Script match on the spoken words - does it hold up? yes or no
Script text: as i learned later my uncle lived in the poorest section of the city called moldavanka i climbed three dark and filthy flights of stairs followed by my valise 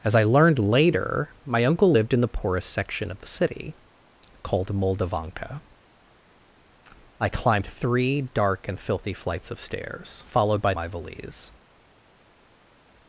yes